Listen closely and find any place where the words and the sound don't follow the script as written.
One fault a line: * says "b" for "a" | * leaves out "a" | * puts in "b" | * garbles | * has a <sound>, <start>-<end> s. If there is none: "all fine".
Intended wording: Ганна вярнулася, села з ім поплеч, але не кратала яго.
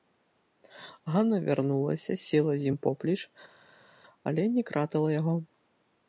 all fine